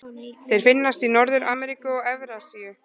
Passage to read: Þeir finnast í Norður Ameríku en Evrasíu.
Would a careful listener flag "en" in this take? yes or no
yes